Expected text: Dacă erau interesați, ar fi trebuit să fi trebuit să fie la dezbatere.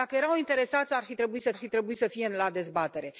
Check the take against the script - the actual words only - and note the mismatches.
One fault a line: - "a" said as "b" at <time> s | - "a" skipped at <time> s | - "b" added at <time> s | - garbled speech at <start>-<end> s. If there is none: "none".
none